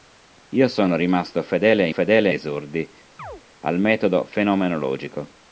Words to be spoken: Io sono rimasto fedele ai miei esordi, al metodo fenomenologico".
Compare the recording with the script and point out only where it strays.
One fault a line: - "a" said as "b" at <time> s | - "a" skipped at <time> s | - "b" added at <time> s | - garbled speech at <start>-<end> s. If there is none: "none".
- "miei" said as "fedele" at 1.9 s